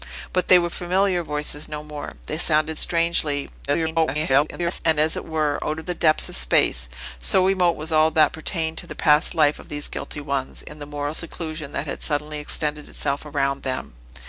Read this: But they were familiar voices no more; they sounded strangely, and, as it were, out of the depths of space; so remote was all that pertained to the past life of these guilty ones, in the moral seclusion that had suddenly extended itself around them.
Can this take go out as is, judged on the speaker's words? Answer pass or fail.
fail